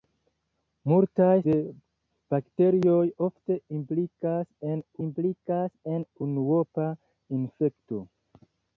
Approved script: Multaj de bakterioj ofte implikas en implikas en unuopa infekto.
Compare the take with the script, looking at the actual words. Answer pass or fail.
pass